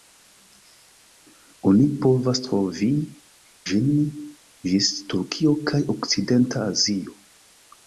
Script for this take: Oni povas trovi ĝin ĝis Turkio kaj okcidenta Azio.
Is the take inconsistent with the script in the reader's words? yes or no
no